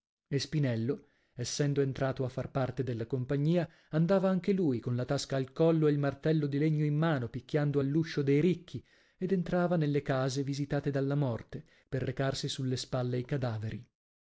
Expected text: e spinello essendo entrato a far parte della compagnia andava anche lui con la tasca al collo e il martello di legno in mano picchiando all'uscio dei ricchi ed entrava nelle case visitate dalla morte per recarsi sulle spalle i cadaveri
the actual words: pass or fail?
pass